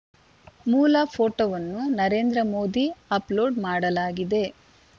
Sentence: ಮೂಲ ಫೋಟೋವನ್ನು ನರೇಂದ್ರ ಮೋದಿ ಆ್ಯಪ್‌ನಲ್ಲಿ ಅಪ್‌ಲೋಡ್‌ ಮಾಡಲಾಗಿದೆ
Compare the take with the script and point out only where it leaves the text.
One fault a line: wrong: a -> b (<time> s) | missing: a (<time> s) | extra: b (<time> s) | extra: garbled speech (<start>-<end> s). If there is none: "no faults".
missing: ಆ್ಯಪ್‌ನಲ್ಲಿ (2.9 s)